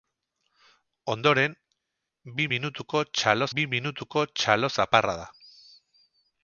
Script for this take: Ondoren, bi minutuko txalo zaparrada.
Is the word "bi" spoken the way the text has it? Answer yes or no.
yes